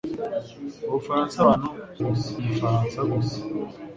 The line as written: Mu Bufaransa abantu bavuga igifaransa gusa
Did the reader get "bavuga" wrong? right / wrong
wrong